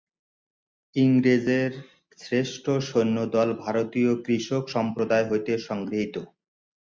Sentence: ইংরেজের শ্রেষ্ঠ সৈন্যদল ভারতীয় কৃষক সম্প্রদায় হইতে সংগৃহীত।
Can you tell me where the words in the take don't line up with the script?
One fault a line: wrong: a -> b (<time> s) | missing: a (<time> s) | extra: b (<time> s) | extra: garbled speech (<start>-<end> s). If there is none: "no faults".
no faults